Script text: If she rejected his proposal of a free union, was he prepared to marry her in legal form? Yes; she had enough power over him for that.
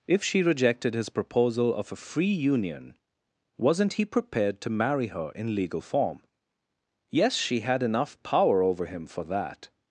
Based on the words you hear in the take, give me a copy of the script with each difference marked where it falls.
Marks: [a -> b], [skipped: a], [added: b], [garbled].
If she rejected his proposal of a free union, [was -> wasn't] he prepared to marry her in legal form? Yes; she had enough power over him for that.